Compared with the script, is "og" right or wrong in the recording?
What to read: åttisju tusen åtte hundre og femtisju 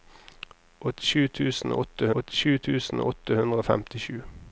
right